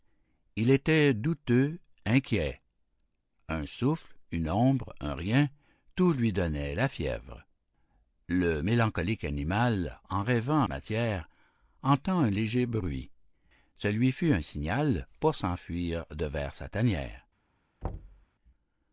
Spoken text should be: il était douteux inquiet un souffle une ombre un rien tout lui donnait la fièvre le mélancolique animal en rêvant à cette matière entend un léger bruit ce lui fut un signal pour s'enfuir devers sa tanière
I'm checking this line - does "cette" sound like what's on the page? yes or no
no